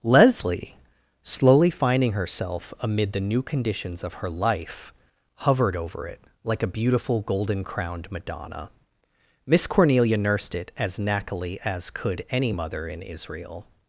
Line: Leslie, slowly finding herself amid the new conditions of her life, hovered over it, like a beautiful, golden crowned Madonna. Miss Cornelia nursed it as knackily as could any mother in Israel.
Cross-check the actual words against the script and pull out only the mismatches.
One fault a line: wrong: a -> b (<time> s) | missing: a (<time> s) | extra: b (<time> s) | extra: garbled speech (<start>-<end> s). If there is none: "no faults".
no faults